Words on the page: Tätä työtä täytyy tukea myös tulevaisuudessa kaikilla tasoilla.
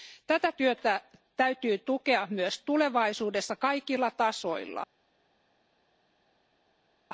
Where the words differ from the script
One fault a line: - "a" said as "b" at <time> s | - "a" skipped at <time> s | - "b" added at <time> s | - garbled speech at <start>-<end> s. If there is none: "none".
none